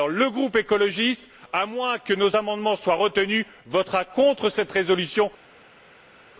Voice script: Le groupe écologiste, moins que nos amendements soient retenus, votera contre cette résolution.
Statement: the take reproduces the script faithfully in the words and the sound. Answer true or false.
false